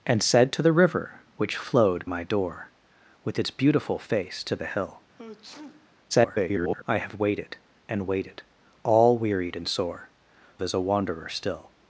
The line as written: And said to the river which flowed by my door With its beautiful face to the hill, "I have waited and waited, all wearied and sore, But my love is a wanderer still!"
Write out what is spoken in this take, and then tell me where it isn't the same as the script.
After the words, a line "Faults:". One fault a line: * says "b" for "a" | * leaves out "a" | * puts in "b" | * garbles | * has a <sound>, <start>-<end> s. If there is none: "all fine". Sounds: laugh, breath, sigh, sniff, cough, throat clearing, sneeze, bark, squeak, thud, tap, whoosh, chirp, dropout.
And said to the river which flowed my door With its beautiful face to the hill, [garbled] "I have waited and waited, all wearied and sore, Is a wanderer still!"
Faults:
* leaves out "by"
* has a sneeze, 5.2-6.0 s
* garbles
* leaves out "But my love"